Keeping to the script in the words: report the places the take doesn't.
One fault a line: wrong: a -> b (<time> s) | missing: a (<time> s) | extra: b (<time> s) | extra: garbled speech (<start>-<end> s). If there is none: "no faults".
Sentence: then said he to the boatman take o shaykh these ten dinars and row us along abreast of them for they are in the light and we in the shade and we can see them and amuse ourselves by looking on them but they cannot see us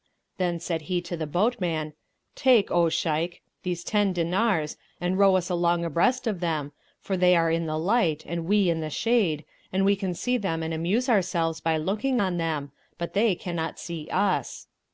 no faults